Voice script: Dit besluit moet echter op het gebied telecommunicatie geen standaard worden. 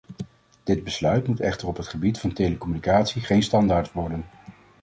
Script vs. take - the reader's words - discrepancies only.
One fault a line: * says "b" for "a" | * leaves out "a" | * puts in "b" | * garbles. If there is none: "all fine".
* puts in "van"